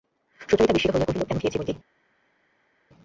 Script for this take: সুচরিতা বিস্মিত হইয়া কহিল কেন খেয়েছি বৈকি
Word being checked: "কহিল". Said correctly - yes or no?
yes